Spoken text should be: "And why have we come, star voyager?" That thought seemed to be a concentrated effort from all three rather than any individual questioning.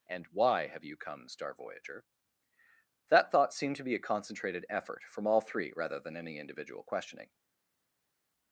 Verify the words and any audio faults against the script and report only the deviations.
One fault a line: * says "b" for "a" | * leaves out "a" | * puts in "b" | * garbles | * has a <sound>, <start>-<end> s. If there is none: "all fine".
* says "you" for "we"